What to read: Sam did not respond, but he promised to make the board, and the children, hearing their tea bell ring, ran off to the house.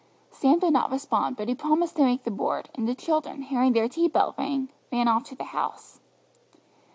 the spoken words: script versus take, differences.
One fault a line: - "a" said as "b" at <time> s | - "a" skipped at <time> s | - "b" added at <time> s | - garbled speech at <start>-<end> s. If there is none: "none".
none